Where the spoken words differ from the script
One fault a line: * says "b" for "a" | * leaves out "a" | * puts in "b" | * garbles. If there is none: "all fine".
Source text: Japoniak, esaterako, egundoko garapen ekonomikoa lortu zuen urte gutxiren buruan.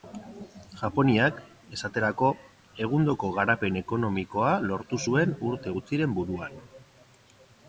all fine